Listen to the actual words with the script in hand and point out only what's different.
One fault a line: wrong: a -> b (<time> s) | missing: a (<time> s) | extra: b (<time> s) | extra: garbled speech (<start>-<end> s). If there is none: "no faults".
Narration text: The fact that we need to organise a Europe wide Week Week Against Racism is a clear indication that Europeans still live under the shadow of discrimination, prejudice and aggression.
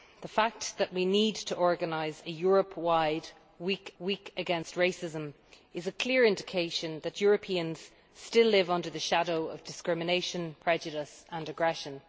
no faults